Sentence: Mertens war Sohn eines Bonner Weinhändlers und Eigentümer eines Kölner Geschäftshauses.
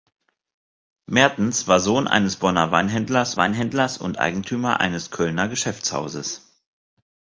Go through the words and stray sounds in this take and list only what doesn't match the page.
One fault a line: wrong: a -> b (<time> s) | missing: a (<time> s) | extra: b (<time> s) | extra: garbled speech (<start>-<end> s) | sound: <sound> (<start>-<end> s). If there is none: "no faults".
extra: Weinhändlers (3.4 s)